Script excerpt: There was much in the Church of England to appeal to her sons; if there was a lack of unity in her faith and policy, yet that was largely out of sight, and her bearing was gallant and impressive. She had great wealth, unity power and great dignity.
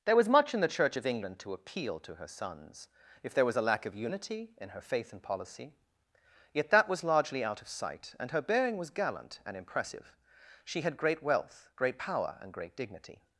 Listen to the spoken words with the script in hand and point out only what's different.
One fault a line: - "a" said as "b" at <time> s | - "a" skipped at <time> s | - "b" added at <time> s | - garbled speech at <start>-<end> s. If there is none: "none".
- "unity" said as "great" at 11.7 s